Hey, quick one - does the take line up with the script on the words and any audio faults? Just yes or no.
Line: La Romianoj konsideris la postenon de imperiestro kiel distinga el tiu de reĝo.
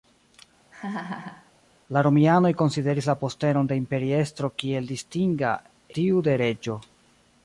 no